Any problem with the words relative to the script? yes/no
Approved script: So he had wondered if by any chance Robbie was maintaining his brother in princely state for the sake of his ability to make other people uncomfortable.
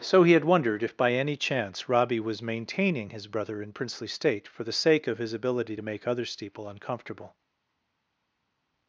yes